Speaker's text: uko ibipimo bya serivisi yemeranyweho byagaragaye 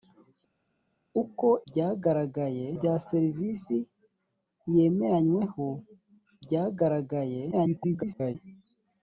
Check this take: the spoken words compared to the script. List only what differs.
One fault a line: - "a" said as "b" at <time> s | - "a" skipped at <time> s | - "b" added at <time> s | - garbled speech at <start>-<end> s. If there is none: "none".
- "ibipimo" said as "byagaragaye" at 1.7 s
- garbled speech at 7.5-8.4 s